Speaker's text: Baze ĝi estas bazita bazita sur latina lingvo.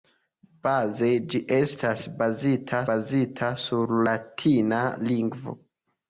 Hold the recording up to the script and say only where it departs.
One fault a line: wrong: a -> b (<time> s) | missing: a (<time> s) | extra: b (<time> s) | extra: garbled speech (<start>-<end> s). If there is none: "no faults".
no faults